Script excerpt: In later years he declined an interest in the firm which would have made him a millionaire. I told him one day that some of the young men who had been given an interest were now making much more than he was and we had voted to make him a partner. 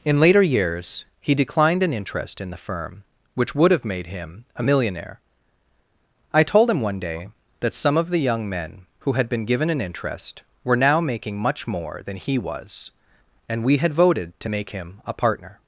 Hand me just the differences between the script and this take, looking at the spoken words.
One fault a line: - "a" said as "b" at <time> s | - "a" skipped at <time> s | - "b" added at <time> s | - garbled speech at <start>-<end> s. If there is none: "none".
none